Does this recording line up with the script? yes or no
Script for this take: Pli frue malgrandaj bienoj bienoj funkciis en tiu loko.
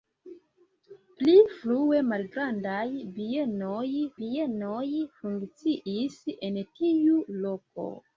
yes